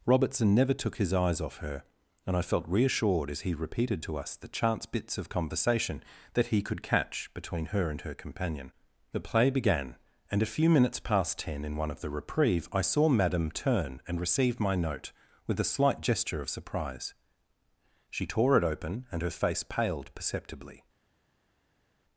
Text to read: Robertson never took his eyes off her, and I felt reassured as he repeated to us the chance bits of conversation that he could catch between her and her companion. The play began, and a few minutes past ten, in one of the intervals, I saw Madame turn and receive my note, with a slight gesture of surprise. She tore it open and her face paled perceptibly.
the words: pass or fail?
fail